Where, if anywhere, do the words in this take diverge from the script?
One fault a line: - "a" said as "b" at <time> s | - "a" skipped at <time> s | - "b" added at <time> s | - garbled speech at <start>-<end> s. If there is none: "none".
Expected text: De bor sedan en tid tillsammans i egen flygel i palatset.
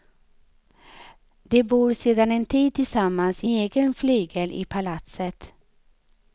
none